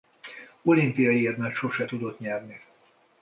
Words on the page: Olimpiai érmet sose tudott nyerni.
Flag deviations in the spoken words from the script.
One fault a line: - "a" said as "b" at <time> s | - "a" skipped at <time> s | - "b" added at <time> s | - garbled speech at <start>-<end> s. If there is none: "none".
none